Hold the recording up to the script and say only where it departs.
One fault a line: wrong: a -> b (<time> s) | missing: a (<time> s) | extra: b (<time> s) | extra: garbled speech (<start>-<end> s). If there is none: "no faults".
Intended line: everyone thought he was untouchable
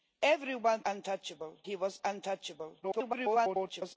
wrong: thought -> untouchable (0.9 s)
extra: garbled speech (2.8-4.0 s)